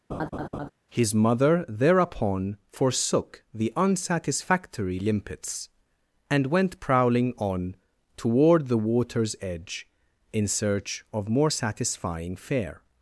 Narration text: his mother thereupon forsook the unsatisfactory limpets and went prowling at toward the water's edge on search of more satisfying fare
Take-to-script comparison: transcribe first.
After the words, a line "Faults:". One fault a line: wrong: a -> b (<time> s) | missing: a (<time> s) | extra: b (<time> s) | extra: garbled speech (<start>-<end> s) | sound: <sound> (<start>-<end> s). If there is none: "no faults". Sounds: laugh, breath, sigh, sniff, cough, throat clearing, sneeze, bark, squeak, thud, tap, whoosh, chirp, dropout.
his mother thereupon forsook the unsatisfactory limpets and went prowling on toward the water's edge in search of more satisfying fare
Faults:
sound: laugh (0.1-0.7 s)
wrong: at -> on (7.4 s)
wrong: on -> in (10.3 s)